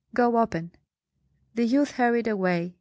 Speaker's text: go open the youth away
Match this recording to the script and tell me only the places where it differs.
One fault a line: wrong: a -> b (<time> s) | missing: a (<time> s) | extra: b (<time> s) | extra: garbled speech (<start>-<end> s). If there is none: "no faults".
extra: hurried (1.9 s)